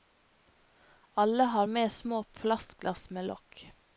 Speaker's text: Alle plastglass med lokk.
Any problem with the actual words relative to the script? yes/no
yes